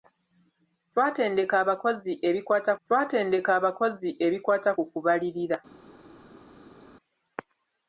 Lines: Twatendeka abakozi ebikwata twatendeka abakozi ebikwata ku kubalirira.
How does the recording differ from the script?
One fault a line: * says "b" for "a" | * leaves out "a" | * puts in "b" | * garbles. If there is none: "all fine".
all fine